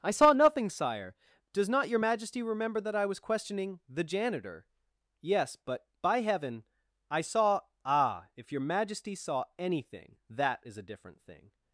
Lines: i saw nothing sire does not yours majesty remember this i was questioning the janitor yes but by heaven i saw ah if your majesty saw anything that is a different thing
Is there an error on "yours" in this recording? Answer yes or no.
yes